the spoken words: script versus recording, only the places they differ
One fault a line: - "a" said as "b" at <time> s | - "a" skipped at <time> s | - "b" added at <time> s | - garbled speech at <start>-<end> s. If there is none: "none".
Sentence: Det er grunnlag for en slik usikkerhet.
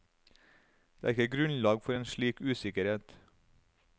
- "ikke" added at 1.1 s